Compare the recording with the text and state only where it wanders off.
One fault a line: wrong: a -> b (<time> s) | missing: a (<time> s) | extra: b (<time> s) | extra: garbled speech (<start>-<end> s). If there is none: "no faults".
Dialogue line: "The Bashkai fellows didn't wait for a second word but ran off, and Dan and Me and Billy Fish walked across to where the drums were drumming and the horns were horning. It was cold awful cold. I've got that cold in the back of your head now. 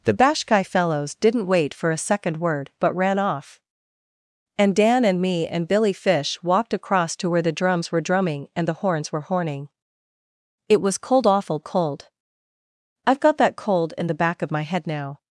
wrong: your -> my (14.5 s)